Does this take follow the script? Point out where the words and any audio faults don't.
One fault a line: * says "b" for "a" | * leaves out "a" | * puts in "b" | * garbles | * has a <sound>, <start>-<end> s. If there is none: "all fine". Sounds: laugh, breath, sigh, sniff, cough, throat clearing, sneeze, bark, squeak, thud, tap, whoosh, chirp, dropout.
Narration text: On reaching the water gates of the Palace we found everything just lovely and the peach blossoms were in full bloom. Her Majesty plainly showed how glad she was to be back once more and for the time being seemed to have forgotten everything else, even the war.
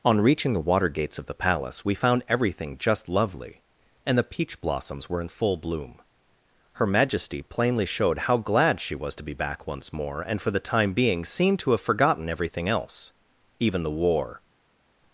all fine